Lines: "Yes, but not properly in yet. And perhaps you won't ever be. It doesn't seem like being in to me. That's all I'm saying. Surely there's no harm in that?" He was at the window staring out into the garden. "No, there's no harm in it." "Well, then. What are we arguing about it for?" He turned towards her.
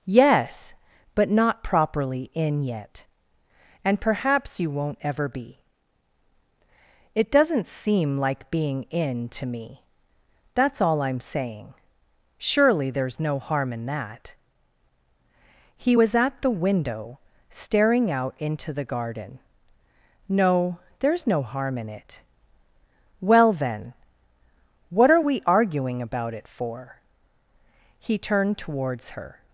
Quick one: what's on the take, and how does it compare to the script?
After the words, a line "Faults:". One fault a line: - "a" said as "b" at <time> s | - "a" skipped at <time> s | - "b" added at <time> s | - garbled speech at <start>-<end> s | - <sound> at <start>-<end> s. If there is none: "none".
"Yes, but not properly in yet. And perhaps you won't ever be. It doesn't seem like being in to me. That's all I'm saying. Surely there's no harm in that?" He was at the window staring out into the garden. "No, there's no harm in it." "Well, then. What are we arguing about it for?" He turned towards her.
Faults:
none